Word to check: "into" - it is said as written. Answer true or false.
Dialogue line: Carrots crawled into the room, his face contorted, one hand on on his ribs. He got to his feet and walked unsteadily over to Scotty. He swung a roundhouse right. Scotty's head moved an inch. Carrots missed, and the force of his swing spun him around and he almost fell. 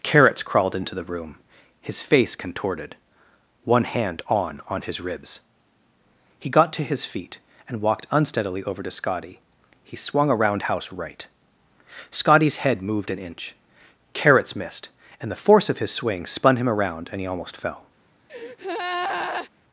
true